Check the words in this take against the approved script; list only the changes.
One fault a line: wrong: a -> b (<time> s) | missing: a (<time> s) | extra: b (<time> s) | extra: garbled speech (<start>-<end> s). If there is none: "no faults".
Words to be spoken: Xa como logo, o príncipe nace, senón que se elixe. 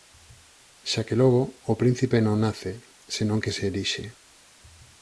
wrong: como -> que (1.1 s)
extra: non (2.3 s)